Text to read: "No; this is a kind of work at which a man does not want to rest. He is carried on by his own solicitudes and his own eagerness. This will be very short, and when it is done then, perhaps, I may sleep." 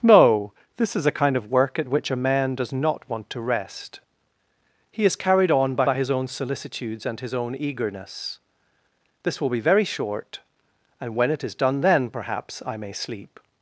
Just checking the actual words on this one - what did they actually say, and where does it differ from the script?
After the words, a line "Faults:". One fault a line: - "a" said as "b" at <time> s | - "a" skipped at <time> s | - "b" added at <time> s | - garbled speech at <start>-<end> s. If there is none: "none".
"No; this is a kind of work at which a man does not want to rest. He is carried on by by his own solicitudes and his own eagerness. This will be very short, and when it is done then, perhaps, I may sleep."
Faults:
- "by" added at 5.8 s